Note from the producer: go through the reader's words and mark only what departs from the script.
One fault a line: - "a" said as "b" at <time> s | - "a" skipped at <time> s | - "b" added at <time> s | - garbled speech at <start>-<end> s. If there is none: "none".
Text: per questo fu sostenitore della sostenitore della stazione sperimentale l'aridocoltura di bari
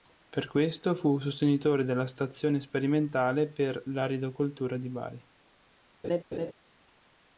- "sostenitore della" skipped at 2.1 s
- "per" added at 3.5 s